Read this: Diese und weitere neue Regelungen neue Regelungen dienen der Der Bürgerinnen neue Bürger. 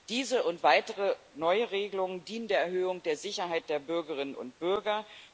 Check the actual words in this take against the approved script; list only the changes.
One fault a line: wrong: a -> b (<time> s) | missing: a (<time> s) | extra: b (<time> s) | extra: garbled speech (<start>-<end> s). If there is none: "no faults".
wrong: neue Regelungen dienen -> dienen der Erhöhung (2.2 s)
extra: Sicherheit (3.2 s)
wrong: neue -> und (4.3 s)